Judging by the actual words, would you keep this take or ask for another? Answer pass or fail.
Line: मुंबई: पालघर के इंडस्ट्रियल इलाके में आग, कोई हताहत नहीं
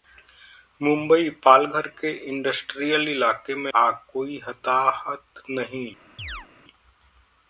pass